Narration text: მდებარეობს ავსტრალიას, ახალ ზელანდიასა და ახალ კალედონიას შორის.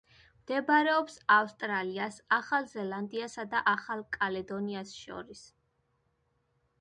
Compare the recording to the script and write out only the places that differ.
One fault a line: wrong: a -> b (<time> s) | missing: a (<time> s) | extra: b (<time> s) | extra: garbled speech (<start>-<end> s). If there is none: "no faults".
no faults